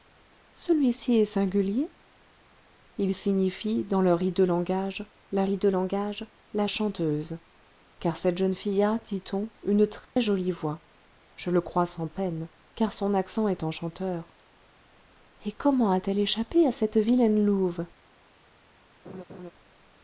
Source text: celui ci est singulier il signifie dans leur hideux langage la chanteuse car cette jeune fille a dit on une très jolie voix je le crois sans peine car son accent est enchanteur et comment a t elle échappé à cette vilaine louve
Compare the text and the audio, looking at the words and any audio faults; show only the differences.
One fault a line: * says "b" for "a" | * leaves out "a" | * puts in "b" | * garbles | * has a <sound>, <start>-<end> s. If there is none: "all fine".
* puts in "hideux langage la"
* has a dropout, 10.0-10.2 s
* has a laugh, 19.0-19.5 s